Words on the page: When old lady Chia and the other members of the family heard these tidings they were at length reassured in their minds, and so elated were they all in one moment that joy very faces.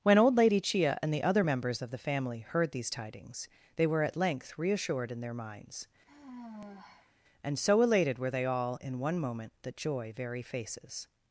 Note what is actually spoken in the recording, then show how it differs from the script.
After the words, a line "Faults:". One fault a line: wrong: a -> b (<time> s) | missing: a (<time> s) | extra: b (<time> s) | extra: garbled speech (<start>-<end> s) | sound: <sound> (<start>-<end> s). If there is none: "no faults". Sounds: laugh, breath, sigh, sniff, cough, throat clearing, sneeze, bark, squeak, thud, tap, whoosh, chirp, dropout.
When old lady Chia and the other members of the family heard these tidings they were at length reassured in their minds, and so elated were they all in one moment that joy very faces.
Faults:
sound: sigh (6.1-7.1 s)